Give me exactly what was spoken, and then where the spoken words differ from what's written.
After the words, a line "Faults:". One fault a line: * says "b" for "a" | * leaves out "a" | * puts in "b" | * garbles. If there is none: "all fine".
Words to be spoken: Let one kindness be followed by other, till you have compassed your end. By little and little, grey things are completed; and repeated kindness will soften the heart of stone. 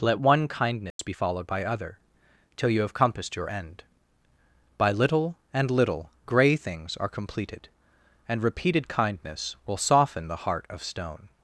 Let one kindness be followed by other, till you have compassed your end. By little and little, grey things are completed; and repeated kindness will soften the heart of stone.
Faults:
all fine